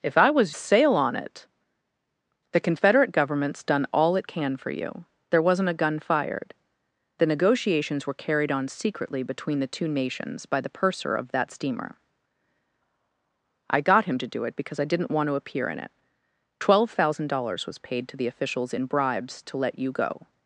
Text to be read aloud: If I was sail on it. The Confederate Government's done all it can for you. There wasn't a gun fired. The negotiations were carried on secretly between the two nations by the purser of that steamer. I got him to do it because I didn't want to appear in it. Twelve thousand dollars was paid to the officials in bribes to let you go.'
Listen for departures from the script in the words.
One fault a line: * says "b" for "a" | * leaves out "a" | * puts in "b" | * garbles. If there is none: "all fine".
all fine